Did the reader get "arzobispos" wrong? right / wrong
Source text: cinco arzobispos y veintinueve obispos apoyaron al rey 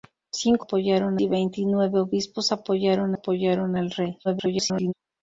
wrong